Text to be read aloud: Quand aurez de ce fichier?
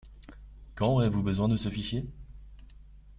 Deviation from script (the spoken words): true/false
true